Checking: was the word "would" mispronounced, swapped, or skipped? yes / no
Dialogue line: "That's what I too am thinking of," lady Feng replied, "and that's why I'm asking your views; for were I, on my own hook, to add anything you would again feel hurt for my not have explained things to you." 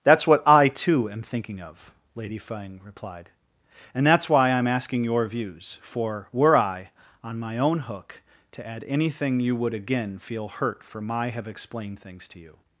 no